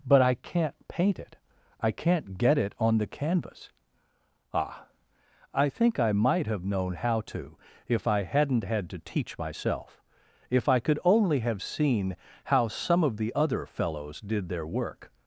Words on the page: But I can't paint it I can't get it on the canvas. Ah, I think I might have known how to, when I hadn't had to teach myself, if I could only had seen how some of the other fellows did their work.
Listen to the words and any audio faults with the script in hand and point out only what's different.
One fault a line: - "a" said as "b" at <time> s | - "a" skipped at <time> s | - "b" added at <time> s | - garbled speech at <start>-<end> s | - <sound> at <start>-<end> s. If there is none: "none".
- "when" said as "if" at 7.9 s
- "had" said as "have" at 11.4 s